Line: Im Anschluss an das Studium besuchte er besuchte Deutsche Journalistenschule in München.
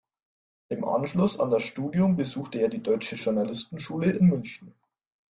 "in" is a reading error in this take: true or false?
false